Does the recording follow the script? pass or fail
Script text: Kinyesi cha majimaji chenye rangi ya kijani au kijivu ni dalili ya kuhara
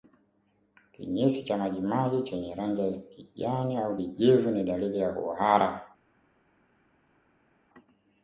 pass